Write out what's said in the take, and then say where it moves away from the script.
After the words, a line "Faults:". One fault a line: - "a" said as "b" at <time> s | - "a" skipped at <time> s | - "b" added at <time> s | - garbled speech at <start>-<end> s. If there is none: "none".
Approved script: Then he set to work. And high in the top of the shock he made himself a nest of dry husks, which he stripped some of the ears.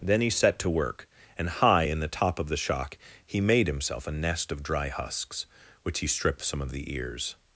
Then he set to work. And high in the top of the shock he made himself a nest of dry husks, which he stripped some of the ears.
Faults:
none